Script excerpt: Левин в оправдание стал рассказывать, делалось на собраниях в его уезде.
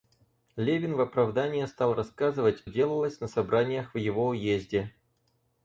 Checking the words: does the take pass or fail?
pass